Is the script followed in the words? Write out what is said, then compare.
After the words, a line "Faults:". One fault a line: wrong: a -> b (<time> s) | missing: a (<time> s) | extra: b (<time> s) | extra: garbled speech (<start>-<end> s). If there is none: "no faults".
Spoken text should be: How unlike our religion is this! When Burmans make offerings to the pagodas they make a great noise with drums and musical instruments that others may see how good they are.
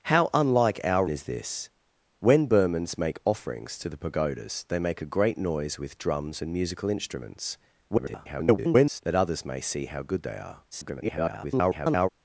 How unlike our is this! When Burmans make offerings to the pagodas they make a great noise with drums and musical instruments [garbled] that others may see how good they are. [garbled]
Faults:
missing: religion (1.1 s)
extra: garbled speech (7.9-9.0 s)
extra: garbled speech (10.7-12.1 s)